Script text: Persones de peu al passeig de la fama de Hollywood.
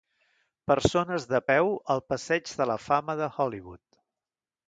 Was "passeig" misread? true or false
false